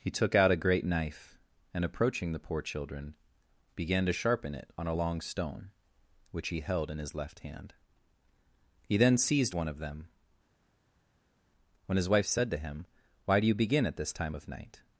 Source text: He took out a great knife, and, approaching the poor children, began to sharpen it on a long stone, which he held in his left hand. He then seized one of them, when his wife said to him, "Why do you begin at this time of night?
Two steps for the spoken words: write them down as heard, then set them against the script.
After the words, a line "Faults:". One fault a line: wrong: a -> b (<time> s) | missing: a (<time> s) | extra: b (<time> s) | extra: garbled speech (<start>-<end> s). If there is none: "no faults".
He took out a great knife, and, approaching the poor children, began to sharpen it on a long stone, which he held in his left hand. He then seized one of them, when his wife said to him, "Why do you begin at this time of night?
Faults:
no faults